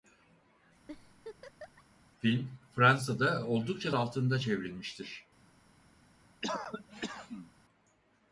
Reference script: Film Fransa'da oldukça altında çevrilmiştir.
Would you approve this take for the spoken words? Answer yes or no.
yes